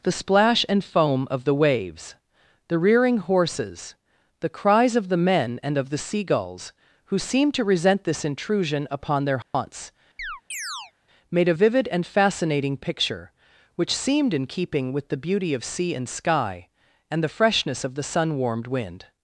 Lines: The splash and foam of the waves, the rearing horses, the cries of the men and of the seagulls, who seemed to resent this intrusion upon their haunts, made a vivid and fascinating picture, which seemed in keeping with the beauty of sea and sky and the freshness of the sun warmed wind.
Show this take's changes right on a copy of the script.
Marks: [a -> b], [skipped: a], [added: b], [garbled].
The splash and foam of the waves, the rearing horses, the cries of the men and of the seagulls, who seemed to resent this intrusion upon their haunts, made a vivid and fascinating picture, which seemed in keeping with the beauty of sea and sky and the freshness of the sun warmed wind.